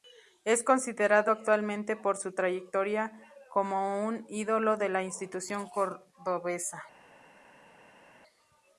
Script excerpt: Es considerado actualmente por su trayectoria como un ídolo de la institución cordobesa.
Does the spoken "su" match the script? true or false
true